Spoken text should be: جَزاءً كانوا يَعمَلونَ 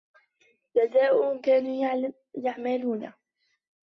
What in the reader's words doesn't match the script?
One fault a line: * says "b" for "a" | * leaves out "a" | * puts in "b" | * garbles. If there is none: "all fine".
all fine